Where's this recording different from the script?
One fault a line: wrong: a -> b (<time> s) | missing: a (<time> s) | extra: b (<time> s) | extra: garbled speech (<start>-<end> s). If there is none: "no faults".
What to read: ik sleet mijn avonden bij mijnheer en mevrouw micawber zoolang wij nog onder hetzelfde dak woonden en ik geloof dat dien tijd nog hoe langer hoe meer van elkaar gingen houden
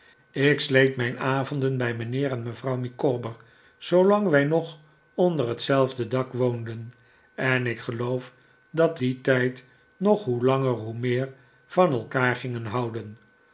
no faults